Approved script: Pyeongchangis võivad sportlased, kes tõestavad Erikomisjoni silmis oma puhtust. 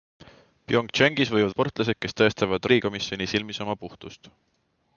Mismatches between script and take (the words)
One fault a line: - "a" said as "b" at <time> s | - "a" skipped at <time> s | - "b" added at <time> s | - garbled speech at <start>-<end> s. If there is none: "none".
none